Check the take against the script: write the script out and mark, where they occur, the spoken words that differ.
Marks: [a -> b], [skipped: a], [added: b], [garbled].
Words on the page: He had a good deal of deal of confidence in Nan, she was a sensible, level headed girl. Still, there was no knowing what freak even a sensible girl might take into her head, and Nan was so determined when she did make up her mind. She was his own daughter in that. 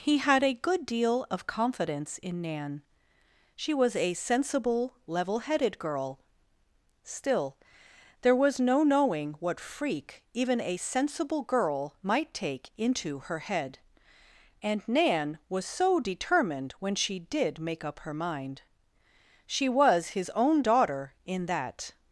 He had a good deal of [skipped: deal of] confidence in Nan, she was a sensible, level headed girl. Still, there was no knowing what freak even a sensible girl might take into her head, and Nan was so determined when she did make up her mind. She was his own daughter in that.